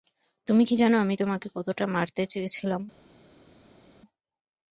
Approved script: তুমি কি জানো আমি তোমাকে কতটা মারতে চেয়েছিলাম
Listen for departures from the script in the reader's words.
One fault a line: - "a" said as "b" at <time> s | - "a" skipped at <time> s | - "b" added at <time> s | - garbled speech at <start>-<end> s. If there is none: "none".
none